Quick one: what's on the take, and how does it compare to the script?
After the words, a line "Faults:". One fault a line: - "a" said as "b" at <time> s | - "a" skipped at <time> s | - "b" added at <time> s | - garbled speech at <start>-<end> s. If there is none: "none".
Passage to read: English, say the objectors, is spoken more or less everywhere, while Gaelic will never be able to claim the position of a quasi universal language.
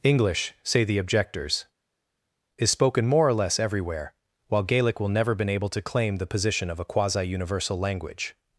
English, say the objectors, is spoken more or less everywhere, while Gaelic will never been able to claim the position of a quasi universal language.
Faults:
- "be" said as "been" at 5.3 s